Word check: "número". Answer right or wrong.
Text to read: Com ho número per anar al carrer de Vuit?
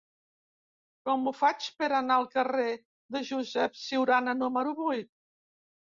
wrong